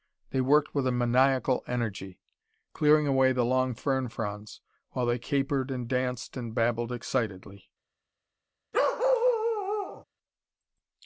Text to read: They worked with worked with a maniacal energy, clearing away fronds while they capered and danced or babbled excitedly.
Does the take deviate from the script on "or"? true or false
true